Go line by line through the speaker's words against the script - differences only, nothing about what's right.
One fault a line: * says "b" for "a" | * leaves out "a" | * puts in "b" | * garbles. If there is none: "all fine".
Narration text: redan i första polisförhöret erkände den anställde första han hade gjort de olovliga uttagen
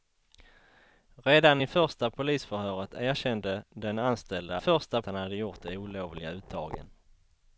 all fine